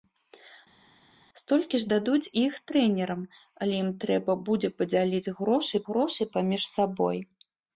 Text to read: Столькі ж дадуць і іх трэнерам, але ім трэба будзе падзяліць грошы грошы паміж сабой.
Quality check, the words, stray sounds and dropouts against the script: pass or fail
pass